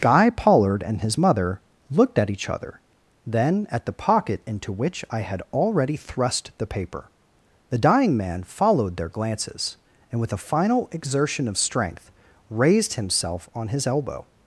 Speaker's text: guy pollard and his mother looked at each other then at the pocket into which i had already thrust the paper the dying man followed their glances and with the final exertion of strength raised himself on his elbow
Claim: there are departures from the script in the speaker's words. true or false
true